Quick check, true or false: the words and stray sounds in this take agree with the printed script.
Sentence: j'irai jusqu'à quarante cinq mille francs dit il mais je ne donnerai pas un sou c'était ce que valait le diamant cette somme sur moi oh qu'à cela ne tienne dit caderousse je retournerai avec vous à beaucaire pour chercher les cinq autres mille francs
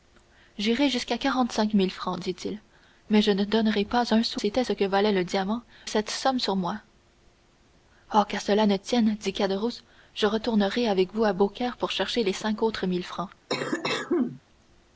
false